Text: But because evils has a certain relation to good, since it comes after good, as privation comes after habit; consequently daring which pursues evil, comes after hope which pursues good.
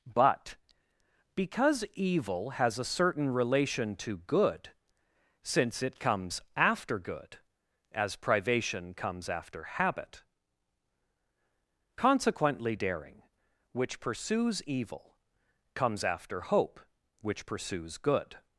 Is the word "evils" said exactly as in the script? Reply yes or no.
no